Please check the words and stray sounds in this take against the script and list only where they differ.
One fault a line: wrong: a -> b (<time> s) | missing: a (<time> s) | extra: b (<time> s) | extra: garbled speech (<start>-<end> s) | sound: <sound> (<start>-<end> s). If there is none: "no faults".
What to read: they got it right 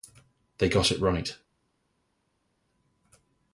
no faults